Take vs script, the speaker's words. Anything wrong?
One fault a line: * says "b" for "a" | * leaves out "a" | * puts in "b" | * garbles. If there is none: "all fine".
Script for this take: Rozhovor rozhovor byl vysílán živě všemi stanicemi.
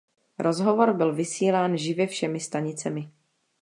* leaves out "rozhovor"